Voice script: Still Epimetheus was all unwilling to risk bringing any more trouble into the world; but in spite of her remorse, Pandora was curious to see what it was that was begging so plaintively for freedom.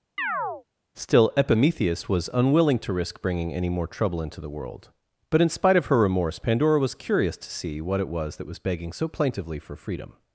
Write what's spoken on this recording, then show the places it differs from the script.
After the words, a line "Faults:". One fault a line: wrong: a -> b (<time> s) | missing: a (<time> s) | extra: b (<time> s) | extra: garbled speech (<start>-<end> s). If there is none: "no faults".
Still Epimetheus was unwilling to risk bringing any more trouble into the world; but in spite of her remorse, Pandora was curious to see what it was that was begging so plaintively for freedom.
Faults:
missing: all (2.3 s)